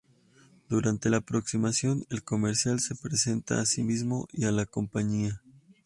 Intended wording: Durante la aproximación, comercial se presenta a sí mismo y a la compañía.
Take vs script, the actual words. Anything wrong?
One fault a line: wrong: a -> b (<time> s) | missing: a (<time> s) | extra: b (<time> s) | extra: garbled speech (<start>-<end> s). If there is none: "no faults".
extra: el (2.1 s)